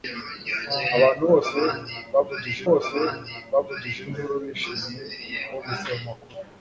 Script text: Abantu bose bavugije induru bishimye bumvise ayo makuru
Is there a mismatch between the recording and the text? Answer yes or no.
yes